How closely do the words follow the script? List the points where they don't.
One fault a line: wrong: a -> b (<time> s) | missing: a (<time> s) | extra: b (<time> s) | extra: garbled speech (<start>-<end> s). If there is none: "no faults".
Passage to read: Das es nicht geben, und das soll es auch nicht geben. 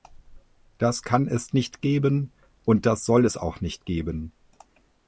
extra: kann (1.0 s)